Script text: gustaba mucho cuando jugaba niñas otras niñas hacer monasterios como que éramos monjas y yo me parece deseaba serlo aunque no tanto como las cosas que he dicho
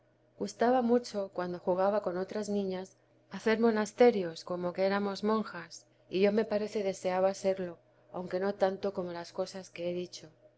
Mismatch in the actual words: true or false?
true